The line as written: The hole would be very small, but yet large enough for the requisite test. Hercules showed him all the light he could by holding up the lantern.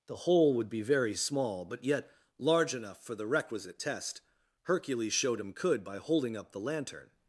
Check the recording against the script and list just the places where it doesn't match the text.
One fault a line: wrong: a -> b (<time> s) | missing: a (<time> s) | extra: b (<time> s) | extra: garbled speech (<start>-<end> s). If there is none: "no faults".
missing: all the light he (5.5 s)